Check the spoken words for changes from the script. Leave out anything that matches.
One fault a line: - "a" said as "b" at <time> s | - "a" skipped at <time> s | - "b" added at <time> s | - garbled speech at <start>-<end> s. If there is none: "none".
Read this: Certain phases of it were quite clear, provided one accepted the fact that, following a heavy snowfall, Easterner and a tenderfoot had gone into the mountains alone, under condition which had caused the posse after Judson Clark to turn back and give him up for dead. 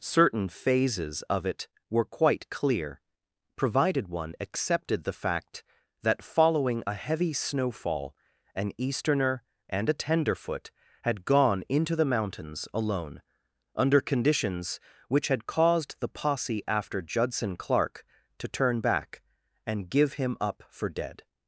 - "an" added at 8.5 s
- "condition" said as "conditions" at 14.0 s